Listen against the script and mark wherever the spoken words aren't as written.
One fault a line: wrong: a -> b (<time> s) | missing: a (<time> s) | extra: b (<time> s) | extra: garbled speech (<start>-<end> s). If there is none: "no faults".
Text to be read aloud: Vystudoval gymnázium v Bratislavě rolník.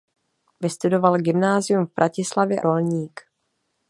no faults